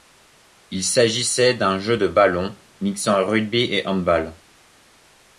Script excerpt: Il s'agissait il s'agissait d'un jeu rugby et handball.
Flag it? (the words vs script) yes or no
yes